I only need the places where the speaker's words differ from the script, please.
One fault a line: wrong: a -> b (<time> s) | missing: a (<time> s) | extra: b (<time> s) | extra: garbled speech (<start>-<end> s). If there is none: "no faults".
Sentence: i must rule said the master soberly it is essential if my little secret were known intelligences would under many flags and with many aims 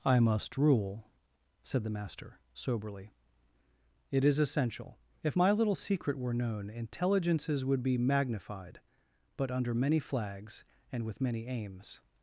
extra: be magnified but (7.8 s)